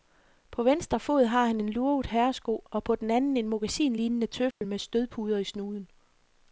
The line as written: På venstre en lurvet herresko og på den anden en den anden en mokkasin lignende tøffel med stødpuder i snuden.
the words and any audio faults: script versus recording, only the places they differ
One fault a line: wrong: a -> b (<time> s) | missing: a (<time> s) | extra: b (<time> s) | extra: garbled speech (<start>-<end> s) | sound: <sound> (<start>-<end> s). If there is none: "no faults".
extra: fod har han (1.0 s)
missing: den anden en (3.5 s)
sound: dropout (4.5-4.6 s)